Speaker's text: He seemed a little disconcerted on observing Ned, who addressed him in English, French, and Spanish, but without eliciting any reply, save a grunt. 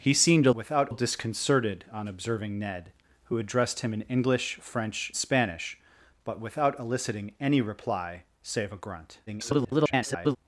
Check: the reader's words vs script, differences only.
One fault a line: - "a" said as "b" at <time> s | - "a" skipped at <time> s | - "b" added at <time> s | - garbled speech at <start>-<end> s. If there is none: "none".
- "little" said as "without" at 0.5 s
- "and" skipped at 5.1 s
- garbled speech at 9.3-10.4 s